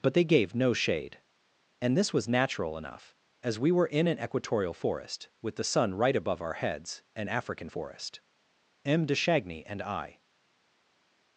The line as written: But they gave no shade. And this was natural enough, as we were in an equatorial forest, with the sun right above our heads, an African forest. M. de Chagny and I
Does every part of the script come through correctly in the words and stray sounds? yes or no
yes